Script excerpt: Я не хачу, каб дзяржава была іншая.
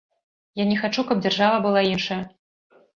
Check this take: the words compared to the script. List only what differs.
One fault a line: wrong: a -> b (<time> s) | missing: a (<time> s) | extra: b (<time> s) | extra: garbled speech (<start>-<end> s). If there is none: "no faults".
no faults